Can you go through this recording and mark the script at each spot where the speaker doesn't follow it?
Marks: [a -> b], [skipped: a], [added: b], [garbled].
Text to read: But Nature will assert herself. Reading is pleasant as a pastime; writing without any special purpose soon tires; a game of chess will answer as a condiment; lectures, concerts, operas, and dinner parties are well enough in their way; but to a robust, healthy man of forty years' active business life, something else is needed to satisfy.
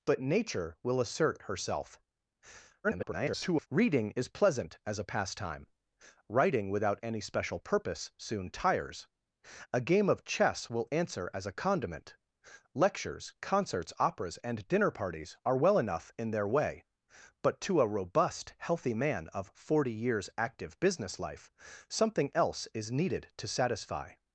But Nature will assert herself. [garbled] Reading is pleasant as a pastime; writing without any special purpose soon tires; a game of chess will answer as a condiment; lectures, concerts, operas, and dinner parties are well enough in their way; but to a robust, healthy man of forty years' active business life, something else is needed to satisfy.